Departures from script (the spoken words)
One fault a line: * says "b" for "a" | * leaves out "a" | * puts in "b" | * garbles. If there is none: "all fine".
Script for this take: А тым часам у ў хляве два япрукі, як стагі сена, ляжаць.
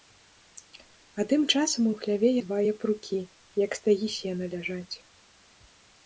all fine